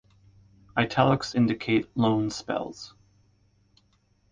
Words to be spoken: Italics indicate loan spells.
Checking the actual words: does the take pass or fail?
pass